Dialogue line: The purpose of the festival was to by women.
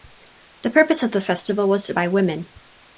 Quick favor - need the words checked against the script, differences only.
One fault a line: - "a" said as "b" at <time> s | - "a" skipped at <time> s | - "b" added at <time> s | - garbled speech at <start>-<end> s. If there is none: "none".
none